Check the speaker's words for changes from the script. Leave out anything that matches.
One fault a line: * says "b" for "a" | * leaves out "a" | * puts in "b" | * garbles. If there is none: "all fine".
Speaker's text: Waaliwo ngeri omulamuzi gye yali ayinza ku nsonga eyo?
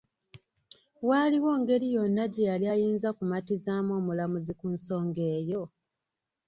* says "yonna" for "omulamuzi"
* puts in "kumatizaamu omulamuzi"